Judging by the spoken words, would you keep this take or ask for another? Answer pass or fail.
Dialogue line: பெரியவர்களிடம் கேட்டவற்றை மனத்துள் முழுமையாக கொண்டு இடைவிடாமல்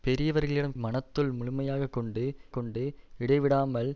fail